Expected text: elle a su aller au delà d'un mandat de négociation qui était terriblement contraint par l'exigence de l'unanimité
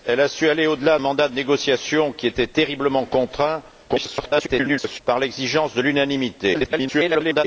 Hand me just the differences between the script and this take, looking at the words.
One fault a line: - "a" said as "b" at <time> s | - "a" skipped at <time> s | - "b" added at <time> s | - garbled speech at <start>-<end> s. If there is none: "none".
- "d'un" skipped at 1.0 s
- garbled speech at 3.9-5.0 s
- garbled speech at 6.5-7.4 s